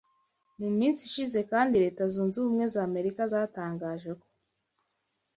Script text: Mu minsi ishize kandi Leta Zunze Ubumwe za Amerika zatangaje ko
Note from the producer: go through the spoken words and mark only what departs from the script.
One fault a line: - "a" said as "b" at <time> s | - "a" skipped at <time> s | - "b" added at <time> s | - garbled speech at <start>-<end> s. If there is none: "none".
none